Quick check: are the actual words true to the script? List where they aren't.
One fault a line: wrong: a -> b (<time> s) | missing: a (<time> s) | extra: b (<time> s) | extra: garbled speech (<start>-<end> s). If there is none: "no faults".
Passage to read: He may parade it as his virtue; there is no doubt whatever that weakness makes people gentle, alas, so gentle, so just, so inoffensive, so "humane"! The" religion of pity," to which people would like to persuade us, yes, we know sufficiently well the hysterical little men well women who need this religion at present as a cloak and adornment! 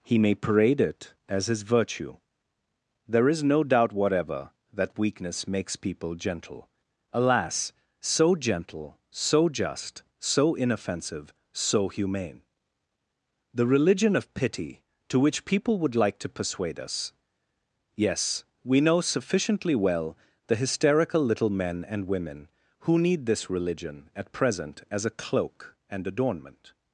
wrong: well -> and (21.9 s)